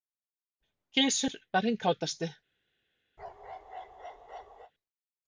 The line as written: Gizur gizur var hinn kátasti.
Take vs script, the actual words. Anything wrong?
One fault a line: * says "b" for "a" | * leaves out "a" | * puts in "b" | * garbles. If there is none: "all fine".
* leaves out "gizur"